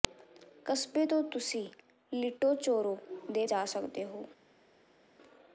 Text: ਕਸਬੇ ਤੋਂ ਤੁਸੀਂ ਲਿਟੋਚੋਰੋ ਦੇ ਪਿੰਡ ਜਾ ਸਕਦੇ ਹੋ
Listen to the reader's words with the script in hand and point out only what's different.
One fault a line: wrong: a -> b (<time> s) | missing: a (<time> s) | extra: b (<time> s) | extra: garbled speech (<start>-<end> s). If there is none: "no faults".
missing: ਪਿੰਡ (3.4 s)